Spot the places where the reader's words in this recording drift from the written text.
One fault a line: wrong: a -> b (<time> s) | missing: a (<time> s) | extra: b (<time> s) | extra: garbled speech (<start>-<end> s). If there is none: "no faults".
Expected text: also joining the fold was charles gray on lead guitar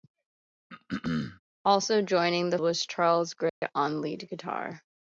missing: fold (2.6 s)